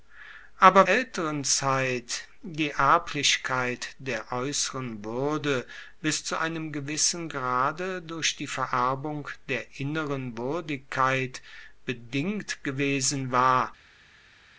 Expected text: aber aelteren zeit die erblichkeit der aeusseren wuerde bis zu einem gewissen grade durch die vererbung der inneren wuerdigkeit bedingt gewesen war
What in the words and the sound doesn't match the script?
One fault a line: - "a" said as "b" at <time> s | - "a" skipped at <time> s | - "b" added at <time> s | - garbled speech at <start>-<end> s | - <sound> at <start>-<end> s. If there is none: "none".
none